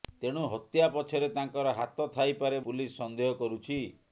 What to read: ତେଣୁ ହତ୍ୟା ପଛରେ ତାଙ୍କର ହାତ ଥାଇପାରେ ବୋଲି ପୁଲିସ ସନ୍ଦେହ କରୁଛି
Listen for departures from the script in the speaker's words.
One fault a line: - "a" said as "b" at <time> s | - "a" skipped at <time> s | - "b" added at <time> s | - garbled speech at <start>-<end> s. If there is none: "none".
- "ବୋଲି" skipped at 2.6 s